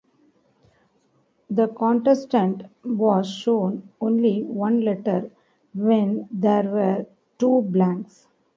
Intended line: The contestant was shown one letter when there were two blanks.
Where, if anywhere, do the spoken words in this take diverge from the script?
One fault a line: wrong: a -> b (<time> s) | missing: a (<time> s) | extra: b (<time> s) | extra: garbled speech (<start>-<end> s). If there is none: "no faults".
extra: only (4.0 s)